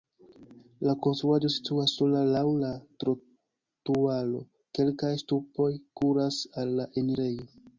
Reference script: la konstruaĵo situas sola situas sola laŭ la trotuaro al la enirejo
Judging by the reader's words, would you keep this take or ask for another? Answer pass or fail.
fail